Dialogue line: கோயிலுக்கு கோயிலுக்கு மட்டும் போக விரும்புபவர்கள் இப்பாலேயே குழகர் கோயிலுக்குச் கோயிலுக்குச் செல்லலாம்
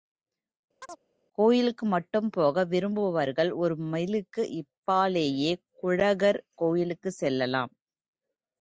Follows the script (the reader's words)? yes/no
no